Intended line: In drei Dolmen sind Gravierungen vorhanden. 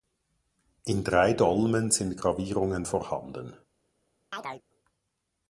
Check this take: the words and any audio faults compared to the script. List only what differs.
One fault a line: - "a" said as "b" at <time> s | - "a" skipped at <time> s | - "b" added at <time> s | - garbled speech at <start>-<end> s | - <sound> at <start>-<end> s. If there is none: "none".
- chirp at 4.3-4.6 s